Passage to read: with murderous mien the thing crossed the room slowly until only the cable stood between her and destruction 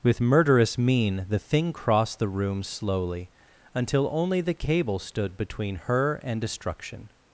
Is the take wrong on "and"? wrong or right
right